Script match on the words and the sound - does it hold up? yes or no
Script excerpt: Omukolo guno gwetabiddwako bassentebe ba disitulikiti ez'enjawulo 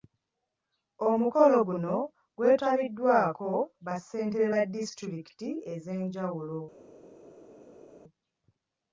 yes